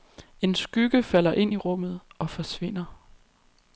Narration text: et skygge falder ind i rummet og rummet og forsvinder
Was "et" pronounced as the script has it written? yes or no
no